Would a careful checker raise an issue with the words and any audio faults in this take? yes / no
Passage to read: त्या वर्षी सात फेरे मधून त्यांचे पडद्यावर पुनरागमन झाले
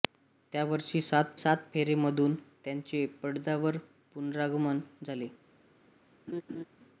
yes